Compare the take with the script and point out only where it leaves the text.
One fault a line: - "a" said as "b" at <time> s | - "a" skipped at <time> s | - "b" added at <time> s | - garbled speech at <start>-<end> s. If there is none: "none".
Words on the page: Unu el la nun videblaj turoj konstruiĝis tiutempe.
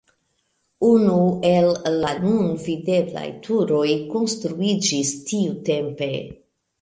none